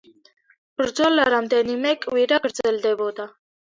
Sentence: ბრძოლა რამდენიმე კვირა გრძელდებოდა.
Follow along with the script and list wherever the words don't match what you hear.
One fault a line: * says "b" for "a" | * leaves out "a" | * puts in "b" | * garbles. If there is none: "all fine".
all fine